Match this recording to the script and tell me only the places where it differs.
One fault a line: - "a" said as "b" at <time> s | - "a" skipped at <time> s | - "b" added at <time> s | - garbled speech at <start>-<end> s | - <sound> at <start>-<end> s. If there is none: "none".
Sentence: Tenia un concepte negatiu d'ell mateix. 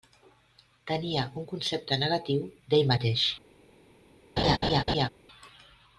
- laugh at 4.4-5.1 s